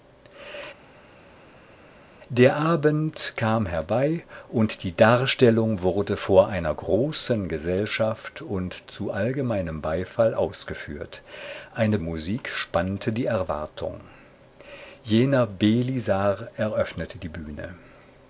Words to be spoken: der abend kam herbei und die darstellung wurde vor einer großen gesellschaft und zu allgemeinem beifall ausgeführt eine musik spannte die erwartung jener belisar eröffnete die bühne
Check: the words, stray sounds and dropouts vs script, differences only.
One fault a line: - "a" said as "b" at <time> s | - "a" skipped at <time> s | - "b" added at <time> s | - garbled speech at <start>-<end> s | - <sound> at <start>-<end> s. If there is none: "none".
none